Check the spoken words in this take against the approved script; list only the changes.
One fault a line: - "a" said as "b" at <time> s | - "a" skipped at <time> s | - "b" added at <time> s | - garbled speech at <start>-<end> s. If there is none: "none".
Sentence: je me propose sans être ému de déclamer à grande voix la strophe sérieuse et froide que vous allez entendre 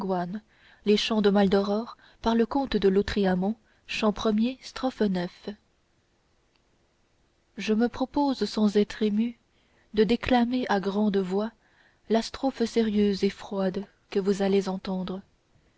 none